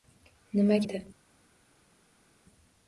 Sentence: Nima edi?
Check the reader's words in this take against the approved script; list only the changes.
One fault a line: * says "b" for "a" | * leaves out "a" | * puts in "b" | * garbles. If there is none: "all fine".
all fine